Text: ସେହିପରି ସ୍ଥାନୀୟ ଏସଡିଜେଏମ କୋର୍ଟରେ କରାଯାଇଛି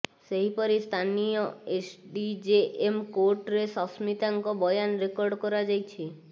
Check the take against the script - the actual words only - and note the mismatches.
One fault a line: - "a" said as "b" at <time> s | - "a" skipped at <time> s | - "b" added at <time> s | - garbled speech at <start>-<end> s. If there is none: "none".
- "ସସ୍ମିତାଙ୍କ ବୟାନ ରେକର୍ଡ" added at 3.8 s